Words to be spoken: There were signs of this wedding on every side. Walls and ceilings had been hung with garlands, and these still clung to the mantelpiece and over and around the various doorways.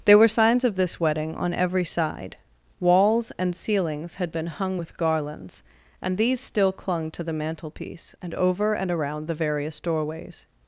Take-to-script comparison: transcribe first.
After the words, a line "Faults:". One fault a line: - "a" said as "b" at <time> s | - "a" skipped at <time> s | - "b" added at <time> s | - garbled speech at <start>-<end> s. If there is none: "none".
There were signs of this wedding on every side. Walls and ceilings had been hung with garlands, and these still clung to the mantelpiece and over and around the various doorways.
Faults:
none